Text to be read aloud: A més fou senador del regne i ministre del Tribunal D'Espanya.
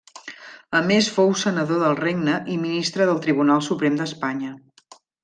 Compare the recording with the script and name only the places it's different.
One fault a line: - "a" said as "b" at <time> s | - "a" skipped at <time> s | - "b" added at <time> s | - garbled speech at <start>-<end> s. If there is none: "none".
- "Suprem" added at 3.7 s